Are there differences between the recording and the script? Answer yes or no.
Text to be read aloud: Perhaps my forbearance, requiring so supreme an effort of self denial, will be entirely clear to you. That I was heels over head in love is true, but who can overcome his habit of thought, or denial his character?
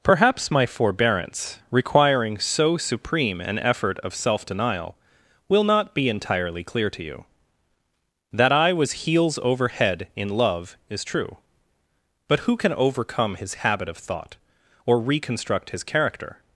yes